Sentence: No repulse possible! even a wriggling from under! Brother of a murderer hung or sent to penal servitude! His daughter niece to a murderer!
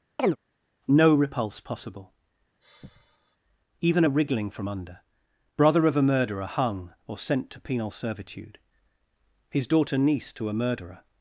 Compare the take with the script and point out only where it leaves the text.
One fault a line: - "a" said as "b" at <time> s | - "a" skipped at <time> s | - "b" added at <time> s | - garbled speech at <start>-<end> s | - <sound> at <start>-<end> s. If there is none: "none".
- chirp at 0.2-0.4 s
- sigh at 2.6-3.4 s